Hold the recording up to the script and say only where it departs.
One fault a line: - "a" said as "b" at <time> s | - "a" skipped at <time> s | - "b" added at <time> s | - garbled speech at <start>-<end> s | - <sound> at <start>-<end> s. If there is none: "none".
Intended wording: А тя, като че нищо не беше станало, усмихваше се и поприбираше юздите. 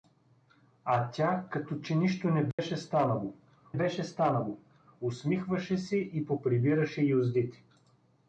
- dropout at 2.5-2.6 s
- "беше станало" added at 3.7 s